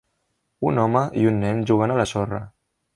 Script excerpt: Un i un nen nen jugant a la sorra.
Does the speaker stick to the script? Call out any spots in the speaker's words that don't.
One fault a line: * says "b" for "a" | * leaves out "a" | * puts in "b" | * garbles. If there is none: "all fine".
* puts in "home"
* leaves out "nen"